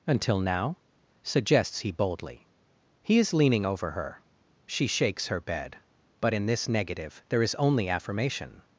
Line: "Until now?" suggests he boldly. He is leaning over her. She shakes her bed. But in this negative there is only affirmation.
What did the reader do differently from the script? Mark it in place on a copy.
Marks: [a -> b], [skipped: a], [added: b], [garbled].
"Until now?" suggests he boldly. He is leaning over her. She shakes her bed. But in this negative there is only affirmation.